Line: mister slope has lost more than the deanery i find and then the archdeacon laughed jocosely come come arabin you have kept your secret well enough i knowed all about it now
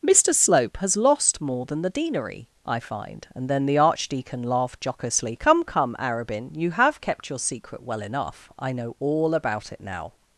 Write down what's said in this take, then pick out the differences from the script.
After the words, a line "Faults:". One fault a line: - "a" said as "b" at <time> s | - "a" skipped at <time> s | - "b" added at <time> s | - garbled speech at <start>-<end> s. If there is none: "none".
mister slope has lost more than the deanery i find and then the archdeacon laughed jocosely come come arabin you have kept your secret well enough i know all about it now
Faults:
- "knowed" said as "know" at 8.7 s